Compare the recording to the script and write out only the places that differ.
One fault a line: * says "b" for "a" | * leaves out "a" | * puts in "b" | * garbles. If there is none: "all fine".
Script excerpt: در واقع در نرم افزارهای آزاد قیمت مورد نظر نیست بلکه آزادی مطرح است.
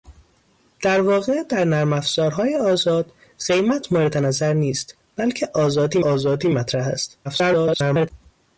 * puts in "آزادی"
* garbles